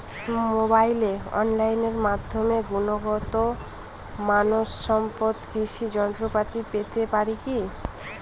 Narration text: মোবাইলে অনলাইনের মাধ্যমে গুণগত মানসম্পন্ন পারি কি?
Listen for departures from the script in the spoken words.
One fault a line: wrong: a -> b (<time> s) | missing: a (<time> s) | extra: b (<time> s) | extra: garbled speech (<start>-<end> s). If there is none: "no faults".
extra: কৃষি যন্ত্রপাতি পেতে (5.5 s)